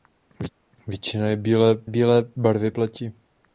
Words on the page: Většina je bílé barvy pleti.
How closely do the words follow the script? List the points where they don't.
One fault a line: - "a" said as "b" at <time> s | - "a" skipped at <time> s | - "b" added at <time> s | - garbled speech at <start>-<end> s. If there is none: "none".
- "bílé" added at 1.8 s